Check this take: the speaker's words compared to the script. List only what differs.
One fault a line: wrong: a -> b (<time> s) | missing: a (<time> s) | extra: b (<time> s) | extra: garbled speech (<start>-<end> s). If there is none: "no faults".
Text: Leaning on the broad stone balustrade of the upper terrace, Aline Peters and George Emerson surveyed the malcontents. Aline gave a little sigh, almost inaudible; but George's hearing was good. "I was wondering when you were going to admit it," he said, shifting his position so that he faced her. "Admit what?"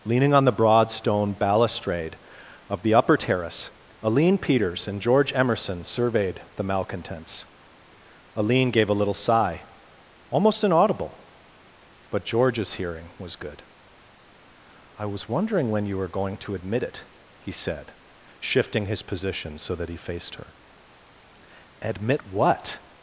no faults